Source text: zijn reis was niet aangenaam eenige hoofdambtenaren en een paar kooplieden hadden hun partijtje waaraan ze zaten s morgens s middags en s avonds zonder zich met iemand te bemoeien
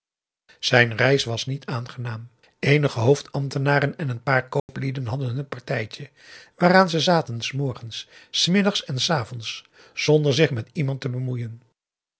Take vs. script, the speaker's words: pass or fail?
pass